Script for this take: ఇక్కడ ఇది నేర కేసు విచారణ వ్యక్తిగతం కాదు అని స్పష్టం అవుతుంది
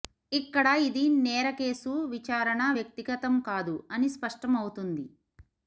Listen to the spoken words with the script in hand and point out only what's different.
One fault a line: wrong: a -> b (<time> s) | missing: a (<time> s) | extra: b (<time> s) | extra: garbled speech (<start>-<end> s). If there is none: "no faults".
no faults